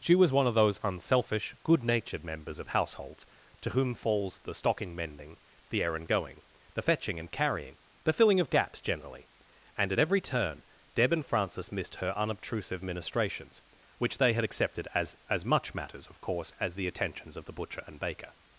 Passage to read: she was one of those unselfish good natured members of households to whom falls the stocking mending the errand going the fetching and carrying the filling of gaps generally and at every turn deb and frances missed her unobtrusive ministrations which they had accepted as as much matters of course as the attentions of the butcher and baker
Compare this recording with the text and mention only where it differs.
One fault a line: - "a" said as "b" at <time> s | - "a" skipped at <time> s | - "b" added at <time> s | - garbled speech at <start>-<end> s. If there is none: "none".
none